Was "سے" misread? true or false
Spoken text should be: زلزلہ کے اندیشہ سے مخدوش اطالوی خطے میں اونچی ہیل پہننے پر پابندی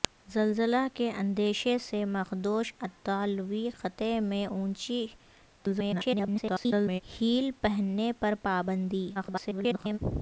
false